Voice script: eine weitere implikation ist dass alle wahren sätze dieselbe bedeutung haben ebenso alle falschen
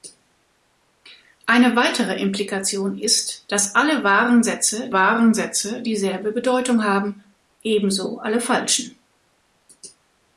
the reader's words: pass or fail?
fail